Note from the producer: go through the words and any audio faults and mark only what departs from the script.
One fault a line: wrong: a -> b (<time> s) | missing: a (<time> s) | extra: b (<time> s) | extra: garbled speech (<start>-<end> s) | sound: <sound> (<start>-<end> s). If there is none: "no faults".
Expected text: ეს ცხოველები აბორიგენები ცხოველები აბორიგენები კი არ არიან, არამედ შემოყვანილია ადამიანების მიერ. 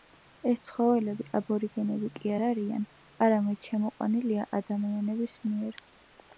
missing: ცხოველები აბორიგენები (2.1 s)